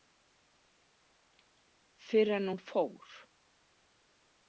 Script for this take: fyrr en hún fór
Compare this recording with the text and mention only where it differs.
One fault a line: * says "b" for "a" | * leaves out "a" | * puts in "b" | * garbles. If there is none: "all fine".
all fine